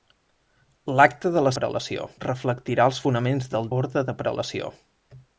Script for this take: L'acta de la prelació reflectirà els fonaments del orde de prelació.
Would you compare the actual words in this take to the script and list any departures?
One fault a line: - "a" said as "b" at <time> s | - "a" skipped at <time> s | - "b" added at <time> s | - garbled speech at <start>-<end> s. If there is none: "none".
none